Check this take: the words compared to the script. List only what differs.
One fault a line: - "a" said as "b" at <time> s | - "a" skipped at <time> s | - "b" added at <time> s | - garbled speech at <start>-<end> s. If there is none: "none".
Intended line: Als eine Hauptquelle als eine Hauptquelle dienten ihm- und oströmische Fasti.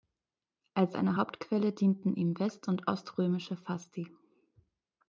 - "als eine Hauptquelle" skipped at 1.7 s
- "west" added at 2.4 s